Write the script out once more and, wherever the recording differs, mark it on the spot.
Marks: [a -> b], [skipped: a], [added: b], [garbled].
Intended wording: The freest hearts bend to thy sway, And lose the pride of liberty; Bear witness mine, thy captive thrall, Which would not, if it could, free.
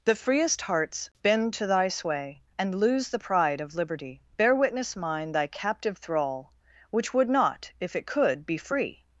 The freest hearts bend to thy sway, And lose the pride of liberty; Bear witness mine, thy captive thrall, Which would not, if it could, [added: be] free.